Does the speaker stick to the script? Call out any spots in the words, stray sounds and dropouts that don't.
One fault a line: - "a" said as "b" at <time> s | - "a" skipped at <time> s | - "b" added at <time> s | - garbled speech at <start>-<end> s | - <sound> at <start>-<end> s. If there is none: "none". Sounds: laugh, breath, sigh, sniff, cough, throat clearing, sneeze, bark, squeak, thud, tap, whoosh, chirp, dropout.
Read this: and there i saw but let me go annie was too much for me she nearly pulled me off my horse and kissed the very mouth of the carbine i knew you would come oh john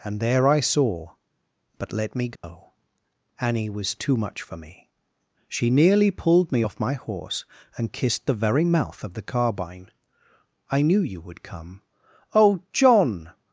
- dropout at 2.4-2.4 s